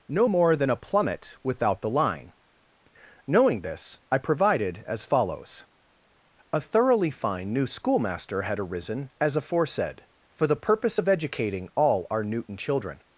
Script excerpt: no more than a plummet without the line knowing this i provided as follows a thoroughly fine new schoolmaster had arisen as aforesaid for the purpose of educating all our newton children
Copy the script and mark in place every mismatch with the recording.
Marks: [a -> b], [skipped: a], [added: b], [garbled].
no more than a plummet without the line knowing this i provided as follows a thoroughly fine new schoolmaster had arisen as aforesaid for the purpose of educating all our newton children